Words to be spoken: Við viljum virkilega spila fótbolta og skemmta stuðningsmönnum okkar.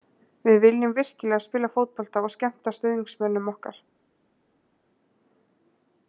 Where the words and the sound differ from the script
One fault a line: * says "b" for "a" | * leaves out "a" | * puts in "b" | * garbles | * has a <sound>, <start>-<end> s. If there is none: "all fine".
all fine